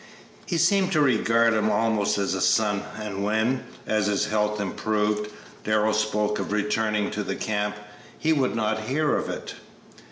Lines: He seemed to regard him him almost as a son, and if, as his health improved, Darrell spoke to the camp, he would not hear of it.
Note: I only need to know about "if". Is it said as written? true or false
false